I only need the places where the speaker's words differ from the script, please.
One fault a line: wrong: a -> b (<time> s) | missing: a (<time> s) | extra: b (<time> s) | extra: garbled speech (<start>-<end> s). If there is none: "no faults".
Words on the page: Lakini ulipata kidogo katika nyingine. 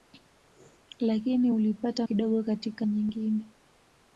no faults